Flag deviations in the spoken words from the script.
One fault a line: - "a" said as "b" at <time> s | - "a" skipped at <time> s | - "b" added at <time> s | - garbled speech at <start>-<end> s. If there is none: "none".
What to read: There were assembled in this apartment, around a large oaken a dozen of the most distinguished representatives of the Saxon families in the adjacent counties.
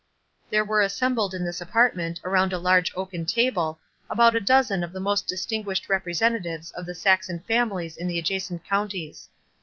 - "table about" added at 3.2 s